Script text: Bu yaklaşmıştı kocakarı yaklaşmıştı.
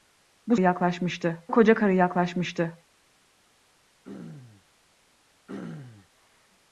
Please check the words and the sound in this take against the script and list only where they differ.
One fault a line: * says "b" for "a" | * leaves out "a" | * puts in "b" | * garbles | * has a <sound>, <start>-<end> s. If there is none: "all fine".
* has a throat clearing, 4.1-4.7 s
* has a throat clearing, 5.5-6.1 s